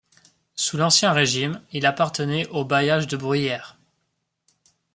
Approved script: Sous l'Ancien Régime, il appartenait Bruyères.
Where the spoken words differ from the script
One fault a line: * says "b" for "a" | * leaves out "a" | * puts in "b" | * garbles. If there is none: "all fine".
* puts in "au bailliage de"